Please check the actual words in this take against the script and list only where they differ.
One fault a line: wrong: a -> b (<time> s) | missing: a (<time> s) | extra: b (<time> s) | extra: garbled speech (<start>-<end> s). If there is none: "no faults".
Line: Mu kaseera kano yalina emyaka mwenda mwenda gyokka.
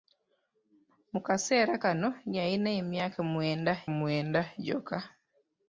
no faults